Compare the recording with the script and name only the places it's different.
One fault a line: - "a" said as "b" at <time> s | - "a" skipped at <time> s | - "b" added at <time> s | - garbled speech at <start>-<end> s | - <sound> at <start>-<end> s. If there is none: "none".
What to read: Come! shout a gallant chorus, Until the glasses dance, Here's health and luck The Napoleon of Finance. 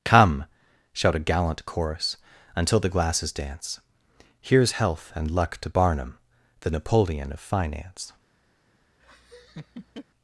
- "to Barnum" added at 5.6 s
- laugh at 9.0-10.0 s